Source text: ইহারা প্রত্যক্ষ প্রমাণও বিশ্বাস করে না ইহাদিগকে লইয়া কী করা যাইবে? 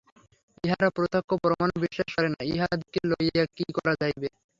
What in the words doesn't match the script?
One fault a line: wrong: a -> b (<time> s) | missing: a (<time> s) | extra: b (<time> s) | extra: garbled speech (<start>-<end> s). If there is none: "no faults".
no faults